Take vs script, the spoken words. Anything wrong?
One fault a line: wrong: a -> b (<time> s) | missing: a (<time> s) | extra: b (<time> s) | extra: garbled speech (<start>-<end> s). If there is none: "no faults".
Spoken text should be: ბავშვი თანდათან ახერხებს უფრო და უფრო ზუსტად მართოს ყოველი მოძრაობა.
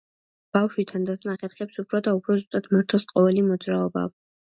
no faults